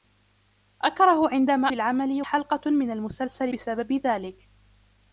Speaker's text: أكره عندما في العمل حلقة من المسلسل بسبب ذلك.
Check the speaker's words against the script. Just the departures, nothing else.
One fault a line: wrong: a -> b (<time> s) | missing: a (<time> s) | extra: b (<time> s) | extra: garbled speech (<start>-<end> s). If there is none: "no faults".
no faults